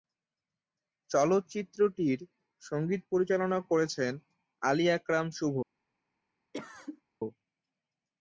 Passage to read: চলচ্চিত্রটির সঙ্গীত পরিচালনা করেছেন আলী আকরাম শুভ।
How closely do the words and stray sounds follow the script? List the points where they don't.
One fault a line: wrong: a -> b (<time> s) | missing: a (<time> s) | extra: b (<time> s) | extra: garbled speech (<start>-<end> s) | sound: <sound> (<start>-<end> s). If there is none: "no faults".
sound: cough (6.5-7.0 s)